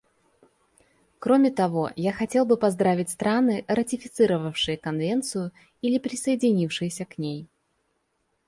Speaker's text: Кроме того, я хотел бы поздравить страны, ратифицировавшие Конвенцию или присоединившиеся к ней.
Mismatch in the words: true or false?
false